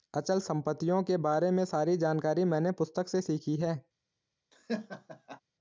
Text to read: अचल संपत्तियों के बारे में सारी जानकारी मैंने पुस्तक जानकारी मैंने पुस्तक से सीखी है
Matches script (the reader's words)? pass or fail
fail